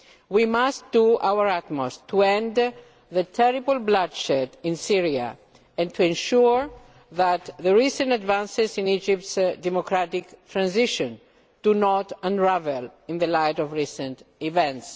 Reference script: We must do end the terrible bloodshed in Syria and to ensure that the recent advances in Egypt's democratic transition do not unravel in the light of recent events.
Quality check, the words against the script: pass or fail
fail